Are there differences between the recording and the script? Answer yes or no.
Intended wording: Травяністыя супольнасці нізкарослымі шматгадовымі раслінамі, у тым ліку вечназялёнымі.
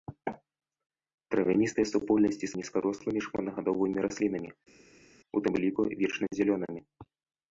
no